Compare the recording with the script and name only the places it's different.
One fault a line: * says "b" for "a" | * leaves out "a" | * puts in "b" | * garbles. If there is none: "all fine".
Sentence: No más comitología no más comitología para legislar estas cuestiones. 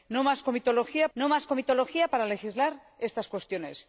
all fine